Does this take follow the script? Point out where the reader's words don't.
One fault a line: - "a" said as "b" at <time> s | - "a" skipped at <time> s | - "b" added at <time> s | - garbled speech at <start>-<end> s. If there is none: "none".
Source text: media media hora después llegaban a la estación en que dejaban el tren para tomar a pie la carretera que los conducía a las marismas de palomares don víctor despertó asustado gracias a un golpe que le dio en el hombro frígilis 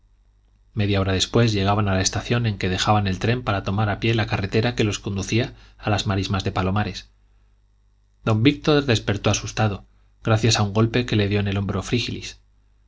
- "media" skipped at 1.0 s